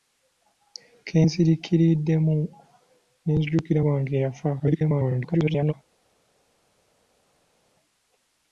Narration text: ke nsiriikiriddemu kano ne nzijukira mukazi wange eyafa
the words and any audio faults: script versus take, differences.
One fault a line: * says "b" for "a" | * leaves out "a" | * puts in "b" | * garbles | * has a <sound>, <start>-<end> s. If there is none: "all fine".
* leaves out "kano"
* leaves out "mukazi"
* garbles